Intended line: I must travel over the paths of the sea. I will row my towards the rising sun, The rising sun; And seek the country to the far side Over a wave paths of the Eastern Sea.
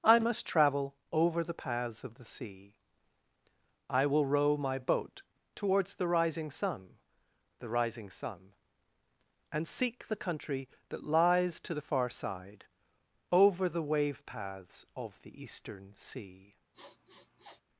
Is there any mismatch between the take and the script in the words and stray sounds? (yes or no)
yes